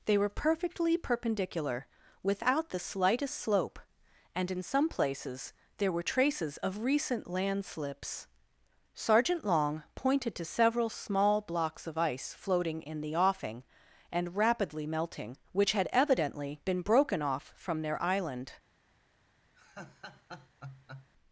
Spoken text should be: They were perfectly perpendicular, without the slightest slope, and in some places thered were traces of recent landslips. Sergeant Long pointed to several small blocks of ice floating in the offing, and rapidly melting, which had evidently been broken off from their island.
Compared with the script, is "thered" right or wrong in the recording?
wrong